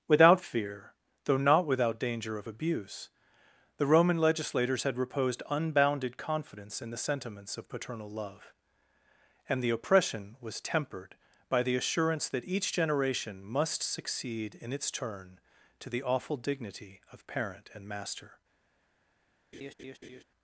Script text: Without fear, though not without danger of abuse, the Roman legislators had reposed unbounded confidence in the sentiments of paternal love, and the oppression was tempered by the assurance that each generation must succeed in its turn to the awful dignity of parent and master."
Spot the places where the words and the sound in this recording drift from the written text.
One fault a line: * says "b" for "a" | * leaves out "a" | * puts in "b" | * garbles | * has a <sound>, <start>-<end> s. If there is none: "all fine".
* has a laugh, 19.5-20.2 s